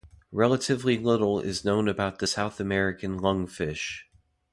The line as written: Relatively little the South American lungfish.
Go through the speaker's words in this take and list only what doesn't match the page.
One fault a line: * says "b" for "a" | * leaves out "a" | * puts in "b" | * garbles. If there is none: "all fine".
* puts in "is known about"